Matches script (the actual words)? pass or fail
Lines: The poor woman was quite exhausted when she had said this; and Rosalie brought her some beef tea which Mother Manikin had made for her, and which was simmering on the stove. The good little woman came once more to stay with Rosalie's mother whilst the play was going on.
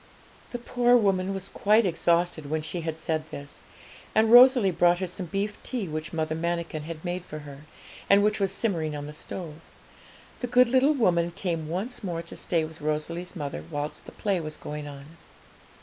pass